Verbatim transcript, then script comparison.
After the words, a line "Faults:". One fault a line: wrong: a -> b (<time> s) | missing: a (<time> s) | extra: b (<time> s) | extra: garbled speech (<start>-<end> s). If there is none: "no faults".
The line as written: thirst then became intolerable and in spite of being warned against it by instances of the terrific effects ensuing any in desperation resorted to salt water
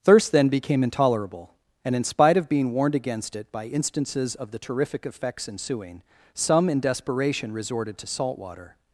thirst then became intolerable and in spite of being warned against it by instances of the terrific effects ensuing some in desperation resorted to salt water
Faults:
wrong: any -> some (6.3 s)